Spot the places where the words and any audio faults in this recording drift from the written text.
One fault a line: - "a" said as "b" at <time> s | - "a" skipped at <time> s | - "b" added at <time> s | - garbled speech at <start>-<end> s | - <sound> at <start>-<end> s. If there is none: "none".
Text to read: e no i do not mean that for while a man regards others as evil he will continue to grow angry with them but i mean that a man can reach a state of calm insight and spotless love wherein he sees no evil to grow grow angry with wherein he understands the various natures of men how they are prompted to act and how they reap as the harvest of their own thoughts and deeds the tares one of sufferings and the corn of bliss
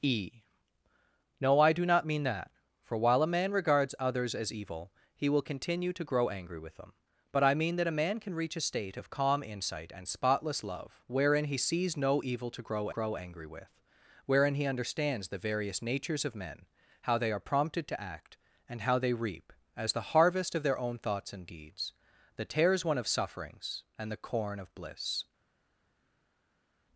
none